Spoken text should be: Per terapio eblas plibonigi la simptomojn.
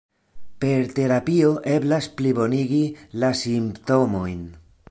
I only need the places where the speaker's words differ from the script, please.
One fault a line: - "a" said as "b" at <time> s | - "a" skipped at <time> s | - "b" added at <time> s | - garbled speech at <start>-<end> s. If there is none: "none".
none